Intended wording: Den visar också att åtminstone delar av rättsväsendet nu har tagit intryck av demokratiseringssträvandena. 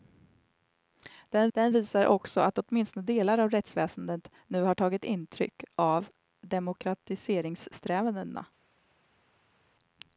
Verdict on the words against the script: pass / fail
fail